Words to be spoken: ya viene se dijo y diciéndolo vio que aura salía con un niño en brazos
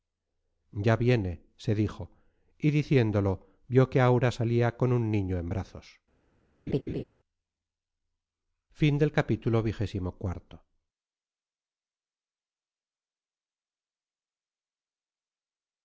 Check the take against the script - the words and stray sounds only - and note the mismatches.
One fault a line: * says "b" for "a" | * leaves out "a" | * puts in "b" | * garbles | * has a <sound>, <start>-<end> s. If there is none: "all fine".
* has a laugh, 6.7-7.0 s